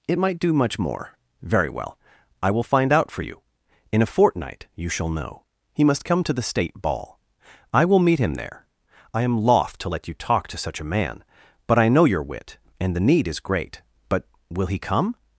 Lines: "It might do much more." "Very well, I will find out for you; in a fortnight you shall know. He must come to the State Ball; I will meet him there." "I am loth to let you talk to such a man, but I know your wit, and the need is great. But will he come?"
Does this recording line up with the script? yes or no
yes